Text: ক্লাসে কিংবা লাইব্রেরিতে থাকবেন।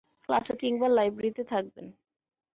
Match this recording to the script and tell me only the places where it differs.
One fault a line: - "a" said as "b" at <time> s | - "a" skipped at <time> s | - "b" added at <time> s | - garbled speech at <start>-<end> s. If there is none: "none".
none